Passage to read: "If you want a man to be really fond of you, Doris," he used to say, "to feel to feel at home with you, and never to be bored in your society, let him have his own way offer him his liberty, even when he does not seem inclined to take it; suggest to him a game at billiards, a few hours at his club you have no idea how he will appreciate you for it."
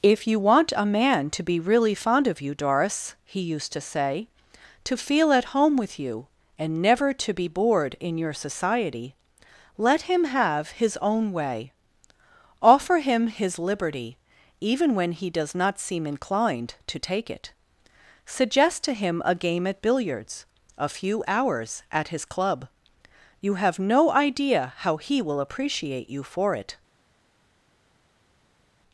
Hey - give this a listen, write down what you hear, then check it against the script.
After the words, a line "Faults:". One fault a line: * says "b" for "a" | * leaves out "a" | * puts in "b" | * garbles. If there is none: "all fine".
"If you want a man to be really fond of you, Doris," he used to say, "to feel at home with you, and never to be bored in your society, let him have his own way offer him his liberty, even when he does not seem inclined to take it; suggest to him a game at billiards, a few hours at his club you have no idea how he will appreciate you for it."
Faults:
* leaves out "to feel"